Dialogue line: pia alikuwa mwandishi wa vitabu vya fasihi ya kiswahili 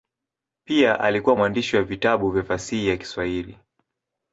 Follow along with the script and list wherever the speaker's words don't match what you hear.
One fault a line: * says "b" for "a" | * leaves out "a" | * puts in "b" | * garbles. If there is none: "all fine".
all fine